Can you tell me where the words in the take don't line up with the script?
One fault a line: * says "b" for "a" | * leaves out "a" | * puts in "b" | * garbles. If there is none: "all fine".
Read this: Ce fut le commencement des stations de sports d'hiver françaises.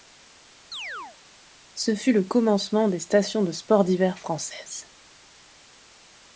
all fine